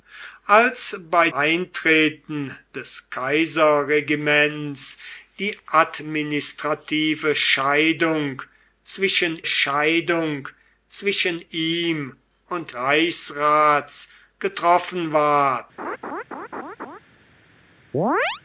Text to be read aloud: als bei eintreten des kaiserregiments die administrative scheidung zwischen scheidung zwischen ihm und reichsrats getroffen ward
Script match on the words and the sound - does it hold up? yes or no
no